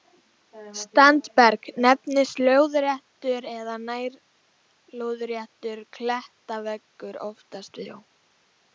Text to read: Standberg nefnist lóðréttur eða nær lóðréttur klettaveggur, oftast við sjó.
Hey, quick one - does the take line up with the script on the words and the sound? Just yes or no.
no